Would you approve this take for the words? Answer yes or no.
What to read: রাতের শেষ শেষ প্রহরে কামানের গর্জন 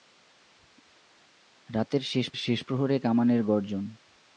yes